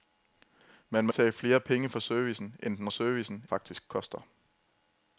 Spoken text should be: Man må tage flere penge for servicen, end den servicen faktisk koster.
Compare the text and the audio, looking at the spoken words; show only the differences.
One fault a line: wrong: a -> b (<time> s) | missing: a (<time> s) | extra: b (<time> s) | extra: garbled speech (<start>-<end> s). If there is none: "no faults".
no faults